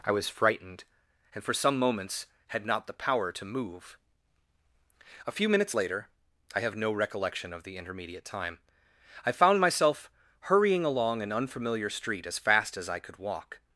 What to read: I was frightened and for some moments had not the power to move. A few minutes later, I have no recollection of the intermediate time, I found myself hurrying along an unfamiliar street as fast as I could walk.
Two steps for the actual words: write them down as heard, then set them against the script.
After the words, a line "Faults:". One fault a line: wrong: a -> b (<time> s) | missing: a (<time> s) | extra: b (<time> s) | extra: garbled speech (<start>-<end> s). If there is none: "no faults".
I was frightened and for some moments had not the power to move. A few minutes later, I have no recollection of the intermediate time, I found myself hurrying along an unfamiliar street as fast as I could walk.
Faults:
no faults